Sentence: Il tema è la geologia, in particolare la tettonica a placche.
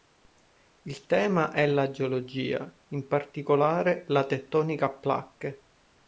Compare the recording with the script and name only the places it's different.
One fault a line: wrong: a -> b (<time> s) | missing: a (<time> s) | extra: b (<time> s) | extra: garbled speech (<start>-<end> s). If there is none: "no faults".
no faults